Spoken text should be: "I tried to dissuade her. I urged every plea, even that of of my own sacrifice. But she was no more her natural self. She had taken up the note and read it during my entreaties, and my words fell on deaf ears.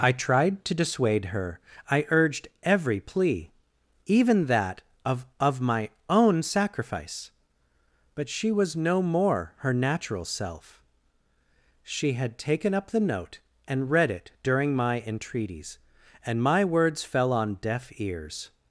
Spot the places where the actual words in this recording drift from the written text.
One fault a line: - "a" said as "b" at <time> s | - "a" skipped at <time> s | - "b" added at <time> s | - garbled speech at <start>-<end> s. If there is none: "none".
none